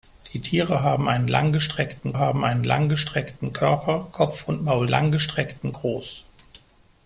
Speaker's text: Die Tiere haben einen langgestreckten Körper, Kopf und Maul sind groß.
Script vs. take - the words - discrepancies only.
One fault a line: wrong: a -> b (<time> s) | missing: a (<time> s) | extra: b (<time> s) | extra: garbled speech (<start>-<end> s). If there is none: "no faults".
extra: haben einen langgestreckten (2.2 s)
wrong: sind -> langgestreckten (4.9 s)